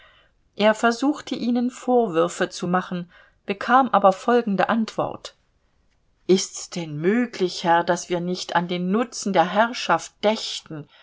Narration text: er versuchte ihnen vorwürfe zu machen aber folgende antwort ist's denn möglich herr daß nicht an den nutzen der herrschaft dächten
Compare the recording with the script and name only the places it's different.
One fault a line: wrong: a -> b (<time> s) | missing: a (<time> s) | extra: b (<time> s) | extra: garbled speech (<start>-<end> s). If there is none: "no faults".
extra: bekam (3.5 s)
extra: wir (8.1 s)